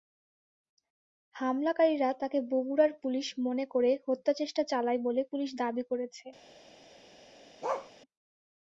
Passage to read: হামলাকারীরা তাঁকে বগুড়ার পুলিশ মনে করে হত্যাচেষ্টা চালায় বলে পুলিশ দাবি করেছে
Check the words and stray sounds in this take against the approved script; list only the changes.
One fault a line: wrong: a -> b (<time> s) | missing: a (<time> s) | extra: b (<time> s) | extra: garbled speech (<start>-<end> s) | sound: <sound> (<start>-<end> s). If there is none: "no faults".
sound: bark (7.6-7.9 s)